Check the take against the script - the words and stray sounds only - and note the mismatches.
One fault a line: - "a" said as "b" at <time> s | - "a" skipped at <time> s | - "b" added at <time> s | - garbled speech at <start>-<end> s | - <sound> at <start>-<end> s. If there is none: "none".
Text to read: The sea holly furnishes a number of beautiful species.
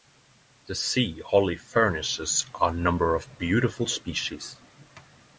none